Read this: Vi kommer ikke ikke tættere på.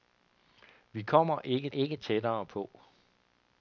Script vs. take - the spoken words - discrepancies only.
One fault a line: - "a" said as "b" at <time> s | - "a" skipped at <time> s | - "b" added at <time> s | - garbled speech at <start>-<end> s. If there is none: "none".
none